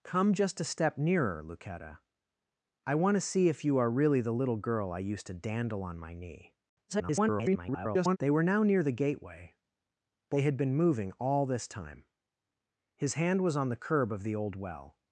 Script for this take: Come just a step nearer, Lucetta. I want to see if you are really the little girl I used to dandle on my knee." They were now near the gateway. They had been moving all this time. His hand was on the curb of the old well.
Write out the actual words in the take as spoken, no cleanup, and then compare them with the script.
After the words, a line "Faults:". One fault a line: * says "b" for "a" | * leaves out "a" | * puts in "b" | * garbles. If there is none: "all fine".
Come just a step nearer, Lucetta. I want to see if you are really the little girl I used to dandle on my knee." [garbled] They were now near the gateway. They had been moving all this time. His hand was on the curb of the old well.
Faults:
* garbles